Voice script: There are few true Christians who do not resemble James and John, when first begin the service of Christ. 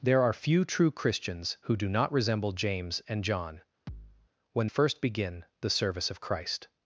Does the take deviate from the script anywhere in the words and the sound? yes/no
yes